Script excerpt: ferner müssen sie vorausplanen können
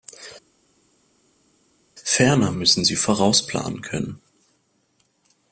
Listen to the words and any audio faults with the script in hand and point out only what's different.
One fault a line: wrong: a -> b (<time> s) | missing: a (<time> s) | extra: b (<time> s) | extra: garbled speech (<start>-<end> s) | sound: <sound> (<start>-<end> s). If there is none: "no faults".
no faults